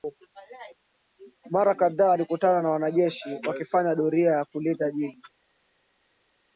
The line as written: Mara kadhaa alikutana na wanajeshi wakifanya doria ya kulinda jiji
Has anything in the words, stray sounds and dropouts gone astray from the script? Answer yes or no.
no